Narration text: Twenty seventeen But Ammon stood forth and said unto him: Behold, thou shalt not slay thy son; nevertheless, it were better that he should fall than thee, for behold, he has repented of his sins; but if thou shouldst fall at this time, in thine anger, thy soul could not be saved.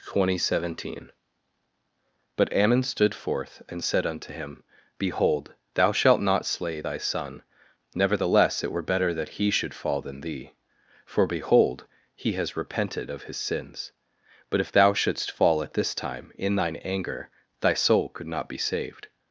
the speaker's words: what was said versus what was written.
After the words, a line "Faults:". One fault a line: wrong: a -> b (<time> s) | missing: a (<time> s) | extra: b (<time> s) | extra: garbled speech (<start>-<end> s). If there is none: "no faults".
Twenty seventeen But Ammon stood forth and said unto him: Behold, thou shalt not slay thy son; nevertheless, it were better that he should fall than thee, for behold, he has repented of his sins; but if thou shouldst fall at this time, in thine anger, thy soul could not be saved.
Faults:
no faults